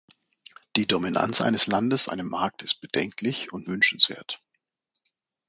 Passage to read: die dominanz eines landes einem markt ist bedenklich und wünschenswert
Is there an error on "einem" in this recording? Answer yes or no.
no